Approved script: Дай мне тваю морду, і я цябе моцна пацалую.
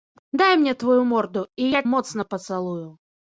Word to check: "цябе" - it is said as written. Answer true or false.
false